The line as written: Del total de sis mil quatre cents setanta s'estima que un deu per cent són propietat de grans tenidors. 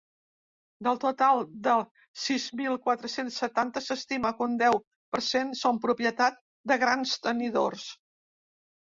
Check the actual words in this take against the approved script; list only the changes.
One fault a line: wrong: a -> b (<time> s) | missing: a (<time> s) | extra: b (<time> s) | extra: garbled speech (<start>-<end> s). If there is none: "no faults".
no faults